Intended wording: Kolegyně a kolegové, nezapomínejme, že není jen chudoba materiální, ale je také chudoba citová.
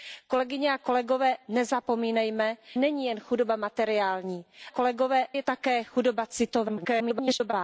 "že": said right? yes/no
no